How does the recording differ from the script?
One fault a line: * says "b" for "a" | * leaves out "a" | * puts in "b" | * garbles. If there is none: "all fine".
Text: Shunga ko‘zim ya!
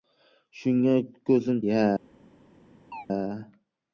all fine